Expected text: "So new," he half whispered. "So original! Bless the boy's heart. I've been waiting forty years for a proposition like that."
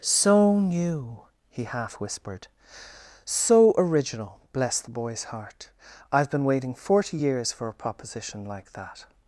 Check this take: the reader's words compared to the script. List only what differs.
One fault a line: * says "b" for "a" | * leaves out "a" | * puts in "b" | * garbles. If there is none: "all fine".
all fine